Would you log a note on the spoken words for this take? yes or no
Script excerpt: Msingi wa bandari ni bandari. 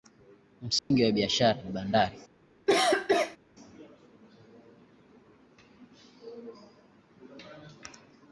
yes